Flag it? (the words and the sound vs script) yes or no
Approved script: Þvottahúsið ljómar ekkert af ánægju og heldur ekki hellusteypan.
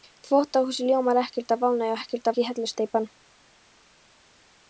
yes